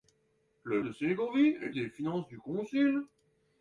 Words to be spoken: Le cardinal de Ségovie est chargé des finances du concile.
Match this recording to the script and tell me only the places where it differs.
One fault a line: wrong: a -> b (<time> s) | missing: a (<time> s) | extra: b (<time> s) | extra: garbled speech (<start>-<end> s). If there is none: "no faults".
missing: cardinal (0.8 s)
missing: chargé (1.7 s)